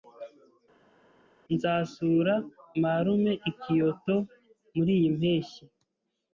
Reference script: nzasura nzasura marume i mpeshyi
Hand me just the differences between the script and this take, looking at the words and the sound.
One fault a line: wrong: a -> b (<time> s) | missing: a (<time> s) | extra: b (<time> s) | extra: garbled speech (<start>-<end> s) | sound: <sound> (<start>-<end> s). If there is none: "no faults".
missing: nzasura (2.3 s)
extra: kyoto muriyi (3.6 s)